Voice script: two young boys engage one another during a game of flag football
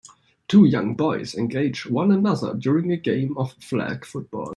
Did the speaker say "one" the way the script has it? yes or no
yes